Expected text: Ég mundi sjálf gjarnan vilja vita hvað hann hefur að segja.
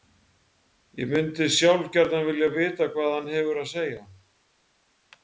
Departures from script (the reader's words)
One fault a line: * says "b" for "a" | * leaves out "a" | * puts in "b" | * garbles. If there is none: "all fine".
all fine